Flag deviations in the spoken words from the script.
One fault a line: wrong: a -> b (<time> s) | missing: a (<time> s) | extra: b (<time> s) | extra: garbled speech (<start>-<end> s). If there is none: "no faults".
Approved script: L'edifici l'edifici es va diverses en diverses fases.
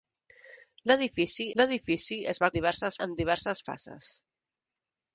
no faults